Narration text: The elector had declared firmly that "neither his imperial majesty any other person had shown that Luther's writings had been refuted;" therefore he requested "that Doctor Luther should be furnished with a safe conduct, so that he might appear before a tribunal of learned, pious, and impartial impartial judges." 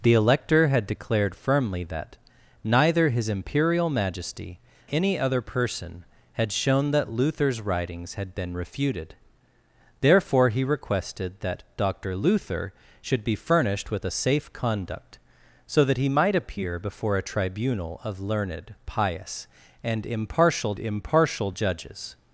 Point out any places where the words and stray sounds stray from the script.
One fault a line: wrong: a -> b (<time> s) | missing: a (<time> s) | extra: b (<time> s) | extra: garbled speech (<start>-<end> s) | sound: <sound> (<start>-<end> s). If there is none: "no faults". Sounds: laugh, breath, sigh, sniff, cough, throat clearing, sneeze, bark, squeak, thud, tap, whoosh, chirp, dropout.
no faults